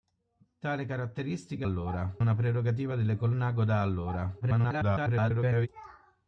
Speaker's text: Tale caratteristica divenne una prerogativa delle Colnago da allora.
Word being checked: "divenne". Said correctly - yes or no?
no